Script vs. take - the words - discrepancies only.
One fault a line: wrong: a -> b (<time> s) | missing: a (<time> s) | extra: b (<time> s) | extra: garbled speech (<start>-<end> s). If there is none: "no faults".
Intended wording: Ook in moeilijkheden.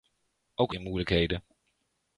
no faults